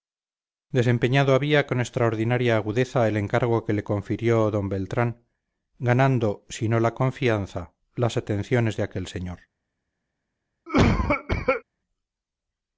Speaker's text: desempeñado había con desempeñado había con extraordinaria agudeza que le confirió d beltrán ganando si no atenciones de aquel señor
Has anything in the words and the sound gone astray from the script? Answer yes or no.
yes